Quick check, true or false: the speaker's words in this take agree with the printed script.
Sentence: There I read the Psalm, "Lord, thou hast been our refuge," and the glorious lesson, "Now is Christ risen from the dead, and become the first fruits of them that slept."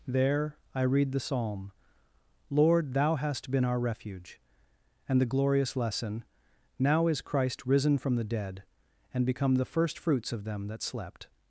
true